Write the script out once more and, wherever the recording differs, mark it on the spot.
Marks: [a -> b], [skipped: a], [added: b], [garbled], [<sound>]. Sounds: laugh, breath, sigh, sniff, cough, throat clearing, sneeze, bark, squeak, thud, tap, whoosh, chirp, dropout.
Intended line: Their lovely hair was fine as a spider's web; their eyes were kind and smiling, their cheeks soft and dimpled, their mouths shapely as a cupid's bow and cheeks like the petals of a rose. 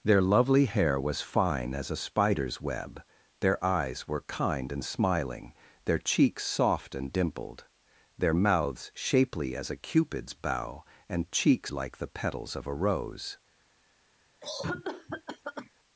Their lovely hair was fine as a spider's web; their eyes were kind and smiling, their cheeks soft and dimpled, their mouths shapely as a cupid's bow and cheeks like the petals of a rose. [cough]